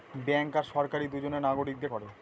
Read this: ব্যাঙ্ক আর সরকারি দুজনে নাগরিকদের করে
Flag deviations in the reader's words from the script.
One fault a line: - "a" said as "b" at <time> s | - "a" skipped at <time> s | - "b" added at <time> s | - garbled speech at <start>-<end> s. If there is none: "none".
none